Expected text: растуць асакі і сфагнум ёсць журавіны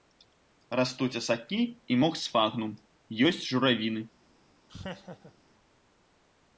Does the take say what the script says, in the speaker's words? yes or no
no